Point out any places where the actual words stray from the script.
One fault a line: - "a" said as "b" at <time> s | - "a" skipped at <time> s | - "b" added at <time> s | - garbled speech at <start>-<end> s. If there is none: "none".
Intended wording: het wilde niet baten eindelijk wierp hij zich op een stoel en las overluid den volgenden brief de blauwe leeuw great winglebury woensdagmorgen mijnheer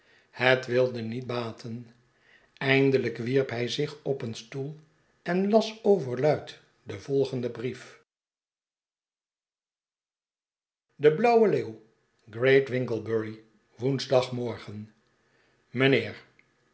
none